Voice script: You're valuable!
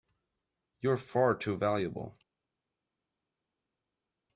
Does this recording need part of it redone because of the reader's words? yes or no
yes